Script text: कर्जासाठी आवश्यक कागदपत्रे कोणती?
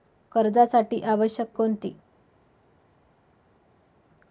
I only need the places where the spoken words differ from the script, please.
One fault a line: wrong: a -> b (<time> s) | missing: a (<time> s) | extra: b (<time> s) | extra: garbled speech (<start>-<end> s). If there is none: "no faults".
missing: कागदपत्रे (1.5 s)